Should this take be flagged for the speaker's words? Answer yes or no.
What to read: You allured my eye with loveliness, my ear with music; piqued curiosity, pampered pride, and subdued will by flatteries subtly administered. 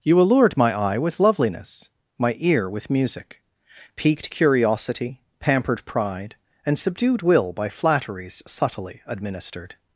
no